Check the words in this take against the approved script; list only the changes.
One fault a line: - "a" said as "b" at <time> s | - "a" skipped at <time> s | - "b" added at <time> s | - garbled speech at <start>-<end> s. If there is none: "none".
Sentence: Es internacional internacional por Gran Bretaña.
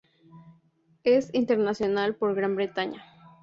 - "internacional" skipped at 2.1 s